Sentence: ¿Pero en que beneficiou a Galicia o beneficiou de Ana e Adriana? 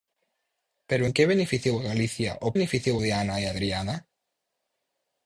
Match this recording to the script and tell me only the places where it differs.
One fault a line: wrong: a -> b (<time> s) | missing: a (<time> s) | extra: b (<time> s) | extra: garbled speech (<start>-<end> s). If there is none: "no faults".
no faults